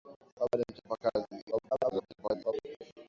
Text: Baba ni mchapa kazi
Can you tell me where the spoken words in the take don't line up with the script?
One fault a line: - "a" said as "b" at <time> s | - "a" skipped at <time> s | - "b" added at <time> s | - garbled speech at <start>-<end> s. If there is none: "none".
- garbled speech at 1.5-2.5 s